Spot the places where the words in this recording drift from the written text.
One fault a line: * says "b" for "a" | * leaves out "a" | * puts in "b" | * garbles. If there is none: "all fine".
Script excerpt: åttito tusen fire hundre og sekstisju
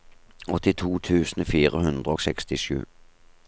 all fine